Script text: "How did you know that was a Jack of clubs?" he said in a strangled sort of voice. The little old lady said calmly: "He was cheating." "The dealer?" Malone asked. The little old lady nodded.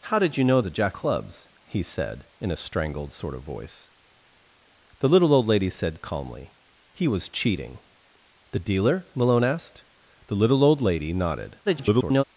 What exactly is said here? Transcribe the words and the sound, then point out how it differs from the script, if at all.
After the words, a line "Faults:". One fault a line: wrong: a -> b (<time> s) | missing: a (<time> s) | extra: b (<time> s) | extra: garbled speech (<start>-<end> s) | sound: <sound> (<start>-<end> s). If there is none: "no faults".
"How did you know a Jack clubs?" he said in a strangled sort of voice. The little old lady said calmly: "He was cheating." "The dealer?" Malone asked. The little old lady nodded. [garbled]
Faults:
missing: that was (0.6 s)
missing: of (1.0 s)
extra: garbled speech (11.6-12.2 s)